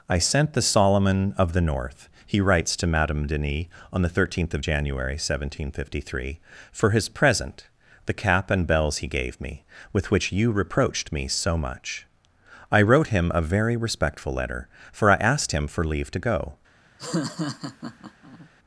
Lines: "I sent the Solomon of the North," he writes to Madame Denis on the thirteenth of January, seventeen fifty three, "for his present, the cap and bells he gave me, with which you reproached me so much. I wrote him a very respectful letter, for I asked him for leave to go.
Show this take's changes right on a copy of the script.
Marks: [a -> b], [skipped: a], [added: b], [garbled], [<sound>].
"I sent the Solomon of the North," he writes to Madame Denis on the thirteenth of January, seventeen fifty three, "for his present, the cap and bells he gave me, with which you reproached me so much. I wrote him a very respectful letter, for I asked him for leave to go. [laugh]